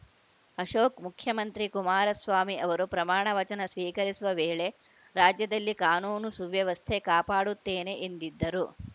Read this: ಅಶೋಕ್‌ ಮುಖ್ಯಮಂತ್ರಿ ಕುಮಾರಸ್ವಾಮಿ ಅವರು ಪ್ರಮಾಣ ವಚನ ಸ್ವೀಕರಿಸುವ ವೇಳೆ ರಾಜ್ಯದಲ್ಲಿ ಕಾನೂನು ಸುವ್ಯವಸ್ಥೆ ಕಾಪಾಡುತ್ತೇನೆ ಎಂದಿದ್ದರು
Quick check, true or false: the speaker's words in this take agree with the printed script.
true